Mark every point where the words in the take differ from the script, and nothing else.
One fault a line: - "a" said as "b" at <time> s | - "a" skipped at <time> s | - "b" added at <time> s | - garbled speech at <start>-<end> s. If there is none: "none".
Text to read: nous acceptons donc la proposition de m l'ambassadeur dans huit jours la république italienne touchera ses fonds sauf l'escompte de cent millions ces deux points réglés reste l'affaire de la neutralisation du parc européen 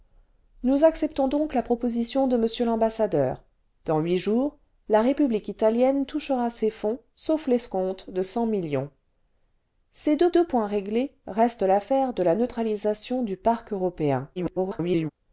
- "deux" added at 10.3 s
- garbled speech at 14.4-15.1 s